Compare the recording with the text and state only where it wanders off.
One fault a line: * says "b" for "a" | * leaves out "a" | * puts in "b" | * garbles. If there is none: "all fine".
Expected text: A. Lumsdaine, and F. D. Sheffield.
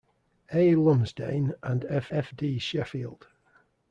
* puts in "F"